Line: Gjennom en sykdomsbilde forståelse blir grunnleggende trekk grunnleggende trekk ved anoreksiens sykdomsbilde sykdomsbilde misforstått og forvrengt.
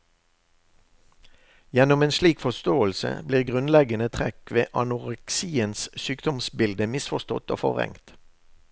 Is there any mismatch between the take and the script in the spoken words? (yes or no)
yes